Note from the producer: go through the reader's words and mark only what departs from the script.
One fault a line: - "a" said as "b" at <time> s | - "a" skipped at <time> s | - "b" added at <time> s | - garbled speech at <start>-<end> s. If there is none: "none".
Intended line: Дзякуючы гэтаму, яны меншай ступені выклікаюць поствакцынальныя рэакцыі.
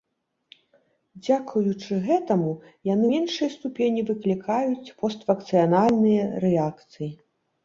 none